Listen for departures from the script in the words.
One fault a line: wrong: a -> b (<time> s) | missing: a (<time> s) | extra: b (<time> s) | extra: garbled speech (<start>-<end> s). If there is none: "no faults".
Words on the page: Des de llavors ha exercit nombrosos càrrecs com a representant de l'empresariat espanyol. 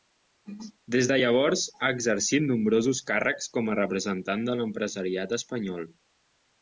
no faults